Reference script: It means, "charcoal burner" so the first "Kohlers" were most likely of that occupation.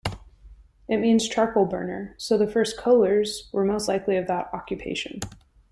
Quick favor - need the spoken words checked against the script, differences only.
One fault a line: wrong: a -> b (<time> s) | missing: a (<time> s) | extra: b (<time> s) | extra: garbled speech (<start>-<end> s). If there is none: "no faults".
no faults